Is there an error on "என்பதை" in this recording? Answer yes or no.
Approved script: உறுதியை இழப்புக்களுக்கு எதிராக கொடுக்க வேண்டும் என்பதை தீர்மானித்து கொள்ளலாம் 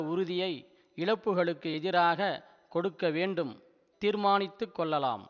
yes